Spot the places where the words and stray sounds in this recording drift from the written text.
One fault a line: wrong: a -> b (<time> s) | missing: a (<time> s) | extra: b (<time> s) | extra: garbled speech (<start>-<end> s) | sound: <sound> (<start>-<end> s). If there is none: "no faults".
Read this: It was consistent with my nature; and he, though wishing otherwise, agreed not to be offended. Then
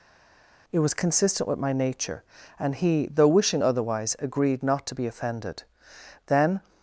no faults